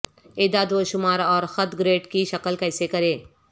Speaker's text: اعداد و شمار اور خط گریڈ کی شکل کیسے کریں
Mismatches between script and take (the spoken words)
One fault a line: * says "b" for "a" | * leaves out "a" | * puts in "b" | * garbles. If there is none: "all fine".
all fine